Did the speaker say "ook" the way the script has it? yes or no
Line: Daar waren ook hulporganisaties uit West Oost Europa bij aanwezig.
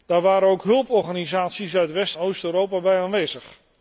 yes